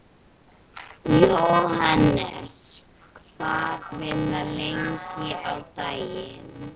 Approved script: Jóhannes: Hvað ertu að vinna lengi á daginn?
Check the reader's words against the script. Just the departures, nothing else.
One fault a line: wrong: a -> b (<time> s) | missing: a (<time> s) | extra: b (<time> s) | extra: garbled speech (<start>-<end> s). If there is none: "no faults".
missing: ertu (3.9 s)